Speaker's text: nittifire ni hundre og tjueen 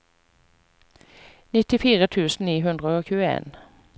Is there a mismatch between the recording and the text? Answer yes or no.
yes